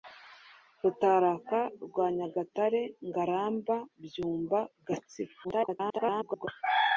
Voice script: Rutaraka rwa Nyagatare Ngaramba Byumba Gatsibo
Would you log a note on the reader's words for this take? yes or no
yes